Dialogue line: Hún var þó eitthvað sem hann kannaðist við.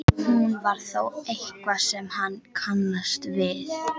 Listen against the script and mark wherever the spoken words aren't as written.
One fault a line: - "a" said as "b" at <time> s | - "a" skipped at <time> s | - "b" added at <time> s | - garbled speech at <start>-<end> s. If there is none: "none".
none